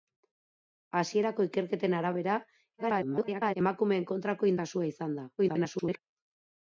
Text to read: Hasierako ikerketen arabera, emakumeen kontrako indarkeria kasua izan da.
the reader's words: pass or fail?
fail